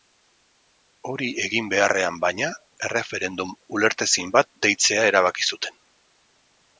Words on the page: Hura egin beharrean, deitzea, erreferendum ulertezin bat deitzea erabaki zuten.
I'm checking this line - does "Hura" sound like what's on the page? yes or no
no